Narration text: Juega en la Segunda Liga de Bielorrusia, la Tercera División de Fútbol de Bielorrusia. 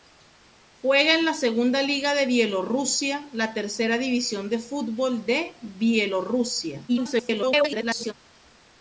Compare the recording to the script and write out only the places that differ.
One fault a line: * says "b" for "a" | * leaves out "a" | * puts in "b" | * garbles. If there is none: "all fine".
* garbles